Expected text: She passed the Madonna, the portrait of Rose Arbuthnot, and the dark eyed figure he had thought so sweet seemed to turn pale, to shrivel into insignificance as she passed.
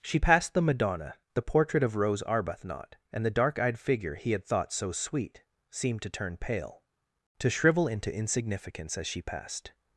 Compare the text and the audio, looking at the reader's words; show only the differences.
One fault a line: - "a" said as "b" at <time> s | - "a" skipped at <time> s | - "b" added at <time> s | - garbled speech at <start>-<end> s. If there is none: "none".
none